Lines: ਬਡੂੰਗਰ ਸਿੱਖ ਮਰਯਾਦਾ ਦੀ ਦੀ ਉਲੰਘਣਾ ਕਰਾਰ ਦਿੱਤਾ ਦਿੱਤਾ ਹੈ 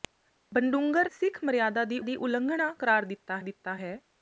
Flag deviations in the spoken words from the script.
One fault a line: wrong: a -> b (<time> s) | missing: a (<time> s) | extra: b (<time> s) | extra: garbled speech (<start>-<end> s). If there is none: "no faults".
no faults